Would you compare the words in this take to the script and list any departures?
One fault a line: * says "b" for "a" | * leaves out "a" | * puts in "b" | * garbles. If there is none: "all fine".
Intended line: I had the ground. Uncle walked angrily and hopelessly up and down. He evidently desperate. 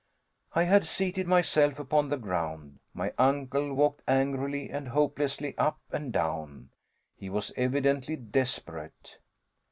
* puts in "seated myself upon"
* puts in "My"
* puts in "was"